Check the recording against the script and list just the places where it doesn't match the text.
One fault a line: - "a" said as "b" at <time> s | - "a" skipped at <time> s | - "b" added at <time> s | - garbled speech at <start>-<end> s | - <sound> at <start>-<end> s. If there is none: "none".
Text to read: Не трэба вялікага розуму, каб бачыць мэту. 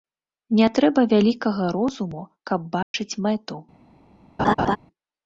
- dropout at 2.8-2.9 s
- laugh at 4.4-4.8 s